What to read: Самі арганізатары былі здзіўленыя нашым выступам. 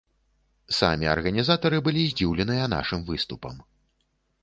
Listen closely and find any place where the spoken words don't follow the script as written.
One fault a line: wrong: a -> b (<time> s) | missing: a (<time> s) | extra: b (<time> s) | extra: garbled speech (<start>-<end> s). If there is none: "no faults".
no faults